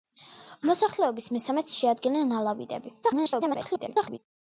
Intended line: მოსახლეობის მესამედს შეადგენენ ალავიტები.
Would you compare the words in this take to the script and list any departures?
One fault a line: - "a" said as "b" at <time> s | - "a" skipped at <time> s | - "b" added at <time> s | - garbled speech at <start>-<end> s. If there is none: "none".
- garbled speech at 3.0-4.2 s